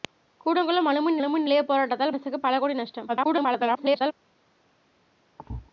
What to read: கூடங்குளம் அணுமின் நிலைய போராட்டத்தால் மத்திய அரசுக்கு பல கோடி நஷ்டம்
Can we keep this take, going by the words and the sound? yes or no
no